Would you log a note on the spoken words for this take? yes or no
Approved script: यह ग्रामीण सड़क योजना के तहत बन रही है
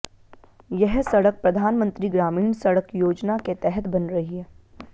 yes